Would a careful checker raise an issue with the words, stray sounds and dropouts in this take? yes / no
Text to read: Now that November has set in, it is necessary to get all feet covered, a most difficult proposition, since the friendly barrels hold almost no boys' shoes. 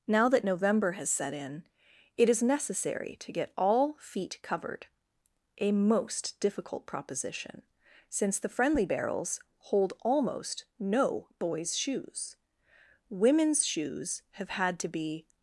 yes